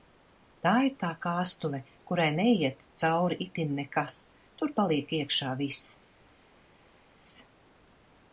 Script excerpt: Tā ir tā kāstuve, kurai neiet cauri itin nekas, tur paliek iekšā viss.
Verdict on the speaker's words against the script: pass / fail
pass